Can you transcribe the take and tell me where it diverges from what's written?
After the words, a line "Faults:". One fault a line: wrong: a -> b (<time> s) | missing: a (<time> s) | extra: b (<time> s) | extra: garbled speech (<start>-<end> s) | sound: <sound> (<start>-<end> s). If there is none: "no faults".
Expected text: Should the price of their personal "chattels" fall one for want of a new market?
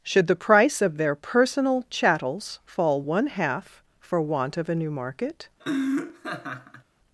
Should the price of their personal "chattels" fall one half for want of a new market?
Faults:
extra: half (3.3 s)
sound: laugh (5.6-6.8 s)